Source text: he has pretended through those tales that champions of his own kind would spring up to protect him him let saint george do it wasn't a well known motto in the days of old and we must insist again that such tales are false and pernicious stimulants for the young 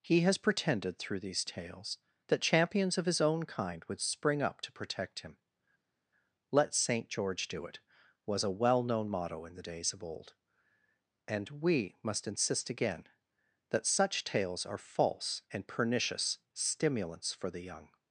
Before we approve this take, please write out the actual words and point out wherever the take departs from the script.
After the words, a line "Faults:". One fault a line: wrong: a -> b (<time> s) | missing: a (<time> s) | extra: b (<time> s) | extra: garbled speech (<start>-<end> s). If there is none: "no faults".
he has pretended through these tales that champions of his own kind would spring up to protect him let saint george do it was a well known motto in the days of old and we must insist again that such tales are false and pernicious stimulants for the young
Faults:
wrong: those -> these (1.2 s)
missing: him (5.4 s)
wrong: wasn't -> was (8.3 s)